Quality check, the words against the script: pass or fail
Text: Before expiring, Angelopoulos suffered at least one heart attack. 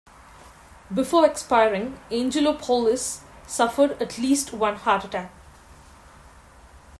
pass